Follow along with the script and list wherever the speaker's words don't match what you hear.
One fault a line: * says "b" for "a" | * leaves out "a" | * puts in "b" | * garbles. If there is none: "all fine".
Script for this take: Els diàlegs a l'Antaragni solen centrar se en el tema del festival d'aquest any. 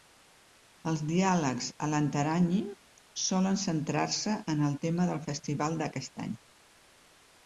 all fine